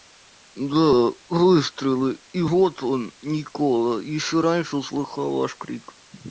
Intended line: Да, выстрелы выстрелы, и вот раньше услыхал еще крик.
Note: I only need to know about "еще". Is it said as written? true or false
false